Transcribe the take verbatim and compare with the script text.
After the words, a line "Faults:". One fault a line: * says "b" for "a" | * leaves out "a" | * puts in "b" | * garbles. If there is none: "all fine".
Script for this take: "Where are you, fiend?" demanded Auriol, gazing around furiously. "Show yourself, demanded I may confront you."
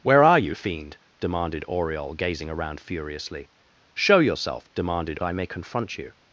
"Where are you, fiend?" demanded Auriol, gazing around furiously. "Show yourself, demanded I may confront you."
Faults:
all fine